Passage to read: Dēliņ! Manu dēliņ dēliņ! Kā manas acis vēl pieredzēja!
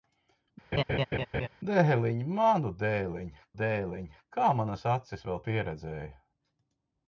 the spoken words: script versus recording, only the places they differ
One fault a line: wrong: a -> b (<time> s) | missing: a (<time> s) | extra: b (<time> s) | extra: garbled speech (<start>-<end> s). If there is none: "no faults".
no faults